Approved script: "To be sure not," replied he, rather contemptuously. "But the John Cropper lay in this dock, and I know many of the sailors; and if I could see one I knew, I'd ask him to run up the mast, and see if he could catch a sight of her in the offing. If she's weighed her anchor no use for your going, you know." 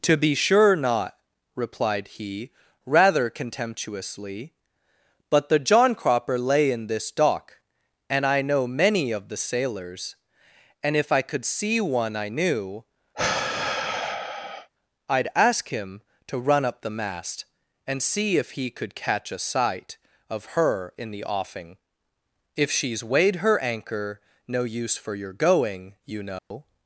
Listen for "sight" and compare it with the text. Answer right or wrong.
right